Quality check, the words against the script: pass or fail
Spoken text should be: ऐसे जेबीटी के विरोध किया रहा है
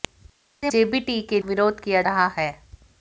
pass